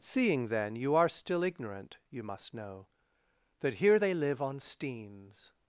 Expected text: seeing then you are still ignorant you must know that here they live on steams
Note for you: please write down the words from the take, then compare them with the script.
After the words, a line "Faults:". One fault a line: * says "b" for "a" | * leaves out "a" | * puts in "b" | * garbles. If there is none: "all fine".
seeing then you are still ignorant you must know that here they live on steams
Faults:
all fine